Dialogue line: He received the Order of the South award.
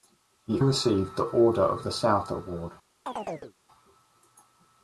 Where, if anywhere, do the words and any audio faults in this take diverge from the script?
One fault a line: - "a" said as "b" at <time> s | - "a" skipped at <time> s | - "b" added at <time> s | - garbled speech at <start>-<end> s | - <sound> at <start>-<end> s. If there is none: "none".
- chirp at 3.1-3.5 s